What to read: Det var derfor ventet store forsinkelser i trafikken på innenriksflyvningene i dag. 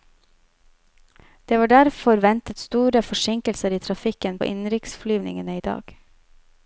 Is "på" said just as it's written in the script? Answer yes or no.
no